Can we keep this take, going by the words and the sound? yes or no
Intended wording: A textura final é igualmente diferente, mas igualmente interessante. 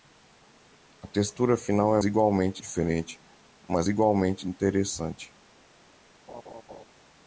no